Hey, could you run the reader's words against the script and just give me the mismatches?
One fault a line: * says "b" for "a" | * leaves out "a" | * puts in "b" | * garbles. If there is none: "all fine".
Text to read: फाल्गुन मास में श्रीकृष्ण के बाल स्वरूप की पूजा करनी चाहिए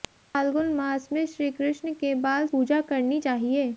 * leaves out "स्वरूप की"